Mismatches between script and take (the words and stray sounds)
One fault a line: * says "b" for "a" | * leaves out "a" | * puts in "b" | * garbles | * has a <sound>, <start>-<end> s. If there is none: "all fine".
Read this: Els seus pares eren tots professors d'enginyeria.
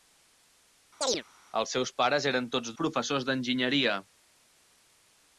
* has a chirp, 1.0-1.2 s